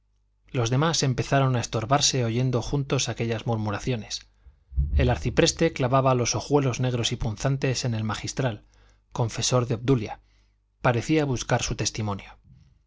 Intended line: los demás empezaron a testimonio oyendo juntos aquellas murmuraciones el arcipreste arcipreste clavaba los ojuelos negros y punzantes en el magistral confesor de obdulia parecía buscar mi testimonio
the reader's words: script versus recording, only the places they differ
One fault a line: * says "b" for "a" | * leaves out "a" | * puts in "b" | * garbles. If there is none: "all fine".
* says "estorbarse" for "testimonio"
* leaves out "arcipreste"
* says "su" for "mi"